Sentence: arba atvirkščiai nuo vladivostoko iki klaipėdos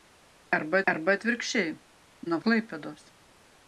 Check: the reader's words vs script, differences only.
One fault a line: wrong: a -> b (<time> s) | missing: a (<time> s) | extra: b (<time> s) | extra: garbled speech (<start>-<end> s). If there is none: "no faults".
extra: arba (0.9 s)
missing: vladivostoko iki (2.4 s)